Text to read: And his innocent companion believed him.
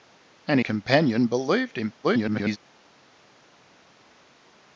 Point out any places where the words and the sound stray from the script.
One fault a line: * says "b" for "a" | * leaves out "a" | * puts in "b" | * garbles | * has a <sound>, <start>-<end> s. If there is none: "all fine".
* leaves out "his innocent"
* garbles